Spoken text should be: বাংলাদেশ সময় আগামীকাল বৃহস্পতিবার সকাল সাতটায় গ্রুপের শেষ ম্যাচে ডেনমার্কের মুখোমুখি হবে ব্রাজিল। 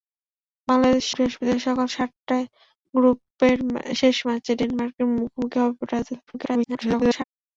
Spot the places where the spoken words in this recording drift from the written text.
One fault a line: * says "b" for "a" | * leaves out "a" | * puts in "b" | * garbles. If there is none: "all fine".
* leaves out "সময় আগামীকাল"
* garbles